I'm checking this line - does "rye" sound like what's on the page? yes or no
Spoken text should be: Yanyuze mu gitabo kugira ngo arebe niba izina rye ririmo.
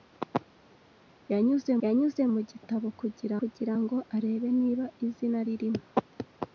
no